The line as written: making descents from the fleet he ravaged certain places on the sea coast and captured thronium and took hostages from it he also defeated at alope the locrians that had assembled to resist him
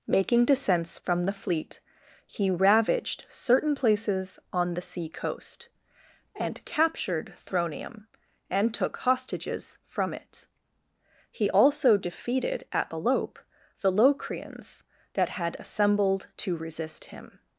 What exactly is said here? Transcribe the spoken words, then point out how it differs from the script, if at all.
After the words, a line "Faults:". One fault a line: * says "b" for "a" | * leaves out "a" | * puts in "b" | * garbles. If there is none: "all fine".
making descents from the fleet he ravaged certain places on the sea coast and captured thronium and took hostages from it he also defeated at alope the locrians that had assembled to resist him
Faults:
all fine